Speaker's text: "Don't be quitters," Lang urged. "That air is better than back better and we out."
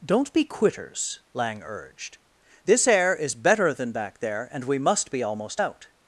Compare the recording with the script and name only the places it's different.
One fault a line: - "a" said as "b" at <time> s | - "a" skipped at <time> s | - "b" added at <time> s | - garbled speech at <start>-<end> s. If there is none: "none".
- "That" said as "This" at 2.6 s
- "better" said as "there" at 4.2 s
- "must be almost" added at 4.8 s